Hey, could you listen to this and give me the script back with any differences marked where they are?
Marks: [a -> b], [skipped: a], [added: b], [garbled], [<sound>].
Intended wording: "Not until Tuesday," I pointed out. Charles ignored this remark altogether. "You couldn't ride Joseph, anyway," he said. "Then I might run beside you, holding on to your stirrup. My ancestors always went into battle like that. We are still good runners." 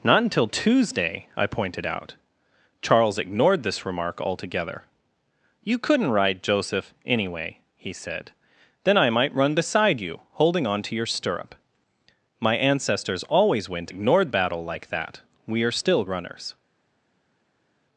"Not until Tuesday," I pointed out. Charles ignored this remark altogether. "You couldn't ride Joseph, anyway," he said. "Then I might run beside you, holding on to your stirrup. My ancestors always went [into -> ignored] battle like that. We are still [skipped: good] runners."